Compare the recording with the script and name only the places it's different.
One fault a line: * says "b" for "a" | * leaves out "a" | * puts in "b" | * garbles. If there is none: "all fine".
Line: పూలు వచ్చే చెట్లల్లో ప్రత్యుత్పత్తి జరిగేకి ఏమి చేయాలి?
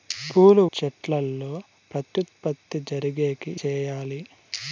* leaves out "వచ్చే"
* leaves out "ఏమి"